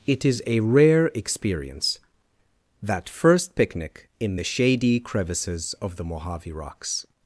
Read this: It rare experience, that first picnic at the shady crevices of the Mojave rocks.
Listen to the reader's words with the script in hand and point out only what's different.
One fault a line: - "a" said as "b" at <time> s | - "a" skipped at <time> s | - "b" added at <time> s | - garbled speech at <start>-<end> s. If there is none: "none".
- "is a" added at 0.2 s
- "at" said as "in" at 4.2 s